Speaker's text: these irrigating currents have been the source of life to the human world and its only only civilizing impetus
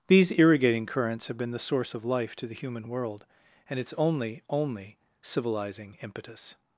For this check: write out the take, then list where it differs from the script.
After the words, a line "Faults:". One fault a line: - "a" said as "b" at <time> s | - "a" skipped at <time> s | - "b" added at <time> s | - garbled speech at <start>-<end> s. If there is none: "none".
these irrigating currents have been the source of life to the human world and its only only civilizing impetus
Faults:
none